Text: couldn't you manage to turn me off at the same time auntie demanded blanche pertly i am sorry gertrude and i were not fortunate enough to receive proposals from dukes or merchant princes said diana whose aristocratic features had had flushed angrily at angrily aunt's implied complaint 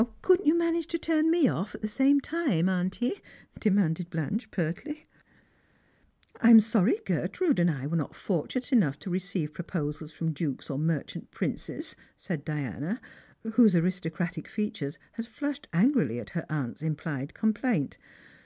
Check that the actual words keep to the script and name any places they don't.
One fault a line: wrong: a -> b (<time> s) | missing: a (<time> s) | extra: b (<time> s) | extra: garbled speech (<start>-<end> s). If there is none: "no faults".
missing: had (15.3 s)
wrong: angrily -> her (16.3 s)